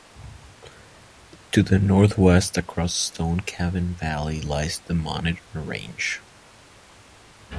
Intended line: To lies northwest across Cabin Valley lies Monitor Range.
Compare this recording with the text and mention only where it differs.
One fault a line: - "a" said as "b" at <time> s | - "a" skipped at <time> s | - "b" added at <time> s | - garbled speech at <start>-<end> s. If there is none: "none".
- "lies" said as "the" at 1.6 s
- "Stone" added at 3.0 s
- "the" added at 4.8 s